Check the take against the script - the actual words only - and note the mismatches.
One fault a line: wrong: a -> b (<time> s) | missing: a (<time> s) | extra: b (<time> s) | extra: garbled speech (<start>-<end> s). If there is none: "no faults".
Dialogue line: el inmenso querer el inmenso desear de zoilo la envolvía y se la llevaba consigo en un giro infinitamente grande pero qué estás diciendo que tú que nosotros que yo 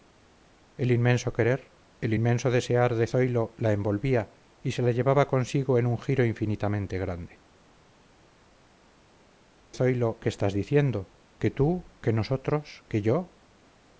wrong: pero -> zoilo (9.7 s)